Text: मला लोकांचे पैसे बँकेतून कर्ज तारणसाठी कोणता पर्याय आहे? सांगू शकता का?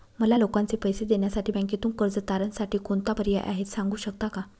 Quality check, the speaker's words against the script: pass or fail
fail